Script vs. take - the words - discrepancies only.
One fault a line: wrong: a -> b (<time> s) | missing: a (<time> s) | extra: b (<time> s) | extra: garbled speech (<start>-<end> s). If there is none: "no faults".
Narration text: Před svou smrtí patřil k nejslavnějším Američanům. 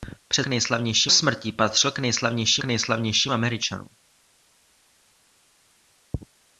wrong: svou -> nejslavnějším (0.5 s)
extra: nejslavnějším (2.6 s)